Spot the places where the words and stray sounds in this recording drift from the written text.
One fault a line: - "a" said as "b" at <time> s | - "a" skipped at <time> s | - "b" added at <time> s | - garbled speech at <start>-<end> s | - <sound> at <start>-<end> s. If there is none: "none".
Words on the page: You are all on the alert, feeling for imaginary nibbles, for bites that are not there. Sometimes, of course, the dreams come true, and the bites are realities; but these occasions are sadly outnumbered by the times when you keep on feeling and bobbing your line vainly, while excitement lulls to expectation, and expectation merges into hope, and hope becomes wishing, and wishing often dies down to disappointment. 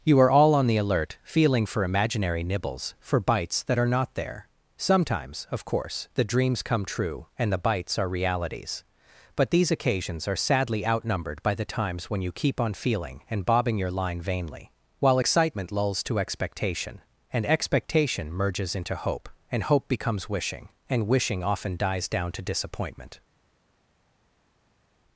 none